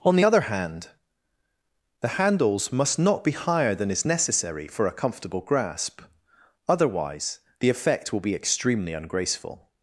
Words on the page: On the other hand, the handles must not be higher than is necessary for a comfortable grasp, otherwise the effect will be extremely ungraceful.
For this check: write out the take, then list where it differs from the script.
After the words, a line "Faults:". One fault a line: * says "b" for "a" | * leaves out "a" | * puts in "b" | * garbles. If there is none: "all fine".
On the other hand, the handles must not be higher than is necessary for a comfortable grasp, otherwise the effect will be extremely ungraceful.
Faults:
all fine